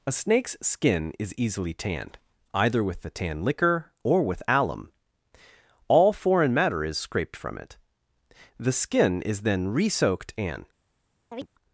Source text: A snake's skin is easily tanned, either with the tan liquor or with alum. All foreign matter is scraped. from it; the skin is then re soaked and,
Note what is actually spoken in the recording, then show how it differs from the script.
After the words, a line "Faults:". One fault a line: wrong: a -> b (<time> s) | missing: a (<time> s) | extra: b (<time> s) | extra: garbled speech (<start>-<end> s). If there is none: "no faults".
A snake's skin is easily tanned, either with the tan liquor or with alum. All foreign matter is scraped. from it; the skin is then re soaked and,
Faults:
no faults